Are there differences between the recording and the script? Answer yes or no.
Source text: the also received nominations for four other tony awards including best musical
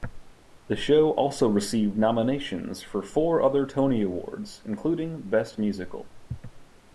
yes